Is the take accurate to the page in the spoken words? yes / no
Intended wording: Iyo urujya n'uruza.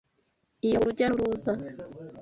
yes